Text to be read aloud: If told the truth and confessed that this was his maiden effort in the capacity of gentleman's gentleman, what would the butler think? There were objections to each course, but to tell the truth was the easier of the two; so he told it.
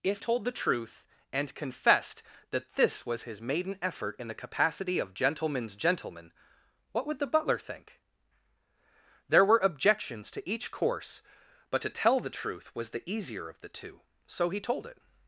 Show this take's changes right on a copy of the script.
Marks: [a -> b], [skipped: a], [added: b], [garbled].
If told the truth and confessed that this was his maiden effort in the capacity of gentleman's gentleman, what would the butler think? There were objections to each course, but to tell the truth was the easier of the two; so he told it.